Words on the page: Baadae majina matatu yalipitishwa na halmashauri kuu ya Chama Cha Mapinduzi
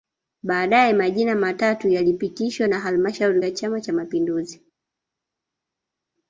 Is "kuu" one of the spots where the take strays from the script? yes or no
yes